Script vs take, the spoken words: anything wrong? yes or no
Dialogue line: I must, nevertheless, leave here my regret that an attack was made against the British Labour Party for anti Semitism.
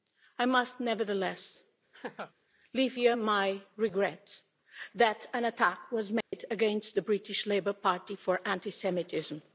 no